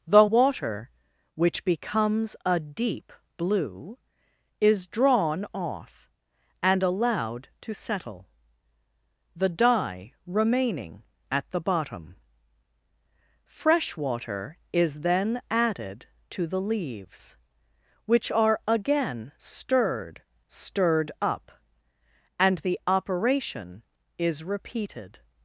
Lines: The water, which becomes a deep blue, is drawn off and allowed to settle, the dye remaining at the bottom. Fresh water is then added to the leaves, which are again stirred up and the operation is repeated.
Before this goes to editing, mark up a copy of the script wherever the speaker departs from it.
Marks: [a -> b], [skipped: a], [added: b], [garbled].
The water, which becomes a deep blue, is drawn off and allowed to settle, the dye remaining at the bottom. Fresh water is then added to the leaves, which are again stirred [added: stirred] up and the operation is repeated.